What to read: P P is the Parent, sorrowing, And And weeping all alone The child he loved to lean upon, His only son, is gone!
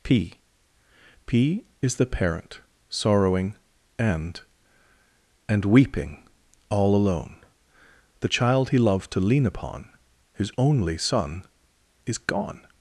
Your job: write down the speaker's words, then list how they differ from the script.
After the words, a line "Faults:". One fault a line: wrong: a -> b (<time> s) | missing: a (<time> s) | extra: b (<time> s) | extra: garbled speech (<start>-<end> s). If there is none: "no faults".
P P is the Parent, sorrowing, And And weeping all alone The child he loved to lean upon, His only son, is gone!
Faults:
no faults